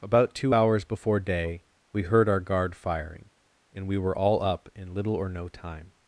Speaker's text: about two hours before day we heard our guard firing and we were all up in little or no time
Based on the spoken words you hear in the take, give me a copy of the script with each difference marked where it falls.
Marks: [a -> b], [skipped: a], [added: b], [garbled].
about two hours before day we heard our guard firing and we were all up in little or no time